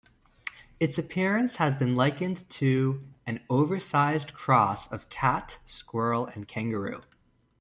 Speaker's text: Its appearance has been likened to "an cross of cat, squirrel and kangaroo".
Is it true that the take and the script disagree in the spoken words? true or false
true